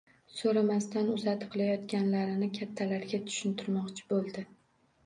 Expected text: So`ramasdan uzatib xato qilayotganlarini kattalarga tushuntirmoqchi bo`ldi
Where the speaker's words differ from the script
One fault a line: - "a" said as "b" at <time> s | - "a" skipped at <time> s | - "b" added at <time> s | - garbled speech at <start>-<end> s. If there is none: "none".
- "xato" skipped at 1.5 s